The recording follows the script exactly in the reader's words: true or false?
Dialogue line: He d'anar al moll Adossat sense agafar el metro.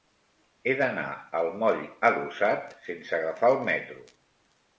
true